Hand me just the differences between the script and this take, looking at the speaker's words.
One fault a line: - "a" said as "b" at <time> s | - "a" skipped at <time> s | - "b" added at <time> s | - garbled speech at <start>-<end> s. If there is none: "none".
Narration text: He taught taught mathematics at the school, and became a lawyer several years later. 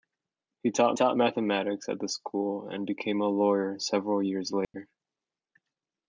none